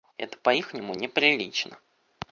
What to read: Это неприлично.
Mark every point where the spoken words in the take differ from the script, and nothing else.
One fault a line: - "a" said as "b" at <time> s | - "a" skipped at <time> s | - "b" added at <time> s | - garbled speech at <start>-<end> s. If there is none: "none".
- "по ихнему" added at 0.4 s